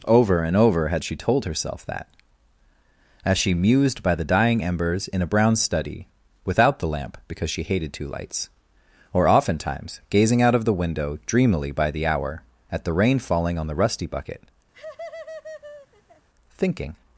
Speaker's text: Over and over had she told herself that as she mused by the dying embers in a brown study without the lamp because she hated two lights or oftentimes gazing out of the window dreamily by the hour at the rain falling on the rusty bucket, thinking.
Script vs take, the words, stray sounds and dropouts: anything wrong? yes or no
yes